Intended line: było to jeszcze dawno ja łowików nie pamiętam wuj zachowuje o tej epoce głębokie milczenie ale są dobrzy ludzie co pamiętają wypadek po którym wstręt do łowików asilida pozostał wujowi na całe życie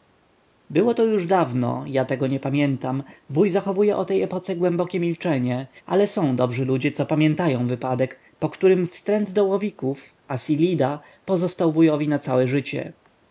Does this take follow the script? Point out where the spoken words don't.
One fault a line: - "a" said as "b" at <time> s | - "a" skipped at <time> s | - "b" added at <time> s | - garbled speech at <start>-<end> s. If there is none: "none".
- "jeszcze" said as "już" at 1.1 s
- "łowików" said as "tego" at 2.0 s